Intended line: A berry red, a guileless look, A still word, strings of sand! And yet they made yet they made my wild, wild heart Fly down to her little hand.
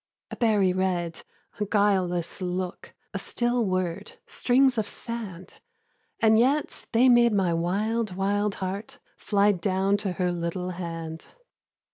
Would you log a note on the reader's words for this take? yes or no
yes